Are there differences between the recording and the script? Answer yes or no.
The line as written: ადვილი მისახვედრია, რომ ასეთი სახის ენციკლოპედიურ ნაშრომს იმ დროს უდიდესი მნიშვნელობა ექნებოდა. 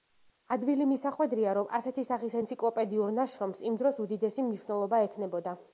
no